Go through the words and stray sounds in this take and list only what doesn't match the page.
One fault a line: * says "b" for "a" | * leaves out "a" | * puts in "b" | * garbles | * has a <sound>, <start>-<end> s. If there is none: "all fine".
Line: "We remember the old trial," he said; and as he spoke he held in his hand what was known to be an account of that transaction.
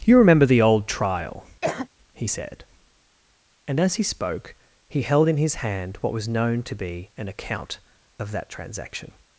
* says "You" for "We"
* has a cough, 1.6-1.9 s